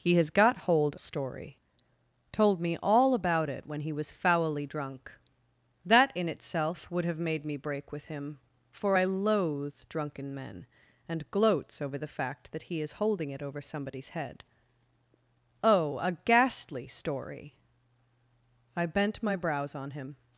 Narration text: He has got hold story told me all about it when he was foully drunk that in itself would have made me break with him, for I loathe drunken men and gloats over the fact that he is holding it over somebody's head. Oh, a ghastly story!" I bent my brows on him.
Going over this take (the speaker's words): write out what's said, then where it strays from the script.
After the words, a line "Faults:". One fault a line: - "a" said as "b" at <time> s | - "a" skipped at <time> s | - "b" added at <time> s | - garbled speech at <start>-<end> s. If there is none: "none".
He has got hold story told me all about it when he was foully drunk that in itself would have made me break with him, for I loathe drunken men and gloats over the fact that he is holding it over somebody's head. Oh, a ghastly story!" I bent my brows on him.
Faults:
none